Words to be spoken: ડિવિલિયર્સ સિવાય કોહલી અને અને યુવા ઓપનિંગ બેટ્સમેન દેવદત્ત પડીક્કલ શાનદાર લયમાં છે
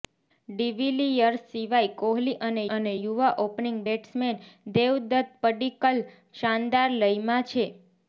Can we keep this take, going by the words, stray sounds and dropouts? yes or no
yes